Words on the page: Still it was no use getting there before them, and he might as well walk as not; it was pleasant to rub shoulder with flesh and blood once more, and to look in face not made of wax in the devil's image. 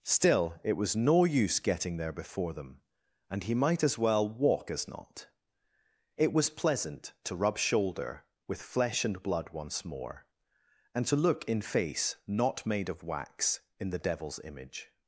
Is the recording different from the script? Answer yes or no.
no